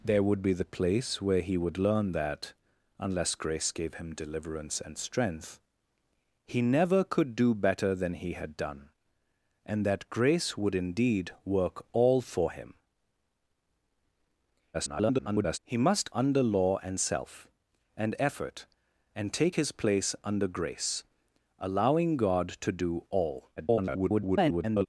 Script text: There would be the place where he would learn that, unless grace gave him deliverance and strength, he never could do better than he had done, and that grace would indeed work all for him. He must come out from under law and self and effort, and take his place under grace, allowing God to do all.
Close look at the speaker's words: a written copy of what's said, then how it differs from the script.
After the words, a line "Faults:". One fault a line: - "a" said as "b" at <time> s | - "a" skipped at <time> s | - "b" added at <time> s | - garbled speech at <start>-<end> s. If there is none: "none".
There would be the place where he would learn that, unless grace gave him deliverance and strength, he never could do better than he had done, and that grace would indeed work all for him. [garbled] He must under law and self and effort, and take his place under grace, allowing God to do all. [garbled]
Faults:
- garbled speech at 14.7-15.6 s
- "come out from" skipped at 16.1 s
- garbled speech at 23.6-24.9 s